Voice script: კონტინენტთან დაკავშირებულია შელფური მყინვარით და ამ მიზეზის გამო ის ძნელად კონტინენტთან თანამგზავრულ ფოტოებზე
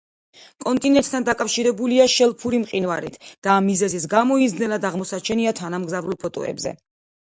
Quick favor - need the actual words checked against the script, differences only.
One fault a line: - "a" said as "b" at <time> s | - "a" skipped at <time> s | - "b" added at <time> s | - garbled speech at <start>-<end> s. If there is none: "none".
- "კონტინენტთან" said as "აღმოსაჩენია" at 4.9 s